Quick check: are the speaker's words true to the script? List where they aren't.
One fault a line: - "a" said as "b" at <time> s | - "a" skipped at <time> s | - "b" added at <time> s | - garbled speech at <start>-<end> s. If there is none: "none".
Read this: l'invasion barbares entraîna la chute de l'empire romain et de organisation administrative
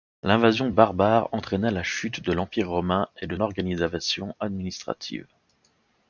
none